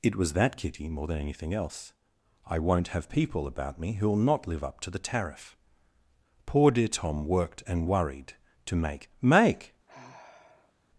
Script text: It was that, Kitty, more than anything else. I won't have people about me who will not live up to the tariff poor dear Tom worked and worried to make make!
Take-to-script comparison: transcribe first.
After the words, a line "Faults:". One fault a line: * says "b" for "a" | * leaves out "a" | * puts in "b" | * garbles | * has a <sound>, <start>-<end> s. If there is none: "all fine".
It was that, Kitty, more than anything else. I won't have people about me who will not live up to the tariff poor dear Tom worked and worried to make make!
Faults:
* has a sigh, 9.9-10.7 s